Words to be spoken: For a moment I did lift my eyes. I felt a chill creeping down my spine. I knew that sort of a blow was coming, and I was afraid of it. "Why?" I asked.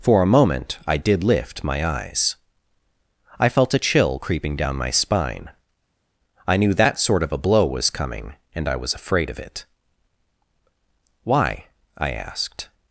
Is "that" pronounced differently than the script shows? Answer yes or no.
no